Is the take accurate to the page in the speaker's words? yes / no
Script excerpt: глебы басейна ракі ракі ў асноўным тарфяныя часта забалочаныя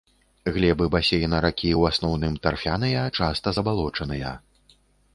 no